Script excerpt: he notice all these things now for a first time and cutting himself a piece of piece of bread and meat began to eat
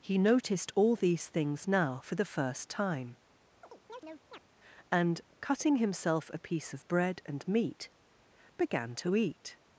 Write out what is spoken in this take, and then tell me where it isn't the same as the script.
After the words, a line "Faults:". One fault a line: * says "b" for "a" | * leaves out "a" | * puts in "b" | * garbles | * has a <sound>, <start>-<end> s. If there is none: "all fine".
he noticed all these things now for the first time and cutting himself a piece of bread and meat began to eat
Faults:
* says "noticed" for "notice"
* says "the" for "a"
* has a chirp, 3.6-4.4 s
* leaves out "piece of"